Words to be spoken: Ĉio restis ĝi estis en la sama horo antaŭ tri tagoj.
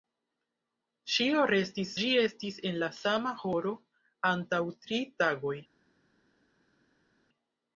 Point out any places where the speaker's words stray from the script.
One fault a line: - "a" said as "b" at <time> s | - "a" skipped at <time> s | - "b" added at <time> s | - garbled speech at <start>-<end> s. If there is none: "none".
none